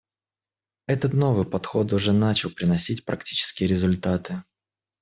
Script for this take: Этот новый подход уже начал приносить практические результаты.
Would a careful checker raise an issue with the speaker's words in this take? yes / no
no